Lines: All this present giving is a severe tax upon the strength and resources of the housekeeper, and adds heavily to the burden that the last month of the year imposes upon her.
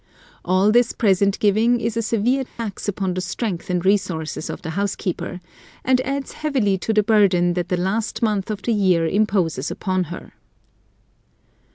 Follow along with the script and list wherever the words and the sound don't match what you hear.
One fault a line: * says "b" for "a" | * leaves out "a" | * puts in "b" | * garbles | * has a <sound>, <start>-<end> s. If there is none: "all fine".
* has a dropout, 2.5-2.6 s